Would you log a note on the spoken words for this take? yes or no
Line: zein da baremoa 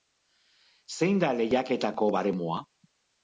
yes